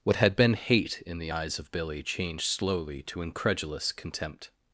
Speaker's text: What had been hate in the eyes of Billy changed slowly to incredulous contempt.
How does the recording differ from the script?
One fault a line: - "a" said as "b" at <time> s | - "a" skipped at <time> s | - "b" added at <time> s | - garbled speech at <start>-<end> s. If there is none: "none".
none